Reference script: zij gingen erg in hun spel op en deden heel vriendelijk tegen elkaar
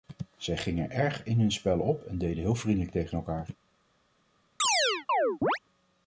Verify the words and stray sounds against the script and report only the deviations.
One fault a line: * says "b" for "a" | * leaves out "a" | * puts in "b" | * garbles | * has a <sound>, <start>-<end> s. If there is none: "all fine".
* has a chirp, 4.6-5.6 s